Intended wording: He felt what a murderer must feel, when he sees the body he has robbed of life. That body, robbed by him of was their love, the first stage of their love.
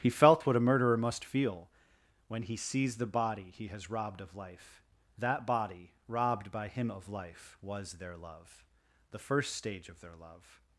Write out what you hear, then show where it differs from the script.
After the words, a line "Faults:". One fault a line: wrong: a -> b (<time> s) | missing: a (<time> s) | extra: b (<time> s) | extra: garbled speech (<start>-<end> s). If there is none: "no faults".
He felt what a murderer must feel, when he sees the body he has robbed of life. That body, robbed by him of life, was their love, the first stage of their love.
Faults:
extra: life (7.1 s)